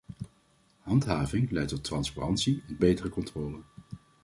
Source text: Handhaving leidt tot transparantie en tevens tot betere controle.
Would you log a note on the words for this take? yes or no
yes